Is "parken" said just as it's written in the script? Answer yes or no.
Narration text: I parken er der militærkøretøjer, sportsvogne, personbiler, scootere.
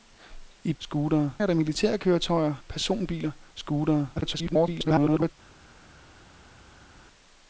no